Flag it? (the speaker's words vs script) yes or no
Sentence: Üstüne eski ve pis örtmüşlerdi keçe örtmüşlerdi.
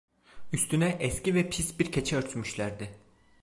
yes